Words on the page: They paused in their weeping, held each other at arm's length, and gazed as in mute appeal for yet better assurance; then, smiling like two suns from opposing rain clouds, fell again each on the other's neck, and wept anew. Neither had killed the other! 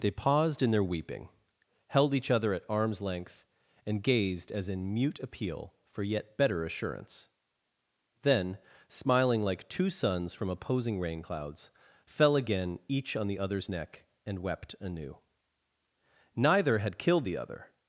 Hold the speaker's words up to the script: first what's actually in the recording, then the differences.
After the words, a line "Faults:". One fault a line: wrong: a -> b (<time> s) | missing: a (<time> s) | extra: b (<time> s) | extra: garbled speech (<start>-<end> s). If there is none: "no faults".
They paused in their weeping, held each other at arm's length, and gazed as in mute appeal for yet better assurance; then, smiling like two suns from opposing rain clouds, fell again each on the other's neck, and wept anew. Neither had killed the other!
Faults:
no faults